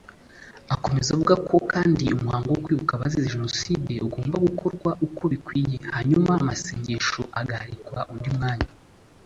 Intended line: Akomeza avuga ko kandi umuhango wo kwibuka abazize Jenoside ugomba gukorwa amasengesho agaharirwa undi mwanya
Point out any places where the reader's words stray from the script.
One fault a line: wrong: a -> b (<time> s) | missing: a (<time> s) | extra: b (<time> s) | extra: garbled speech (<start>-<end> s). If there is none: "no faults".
extra: uko bikwiye hanyuma (5.0 s)